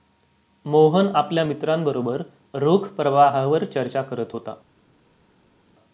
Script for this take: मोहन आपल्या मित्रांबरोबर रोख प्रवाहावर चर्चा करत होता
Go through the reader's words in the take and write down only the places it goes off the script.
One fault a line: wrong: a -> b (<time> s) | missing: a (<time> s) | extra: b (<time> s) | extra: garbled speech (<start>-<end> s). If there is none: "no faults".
no faults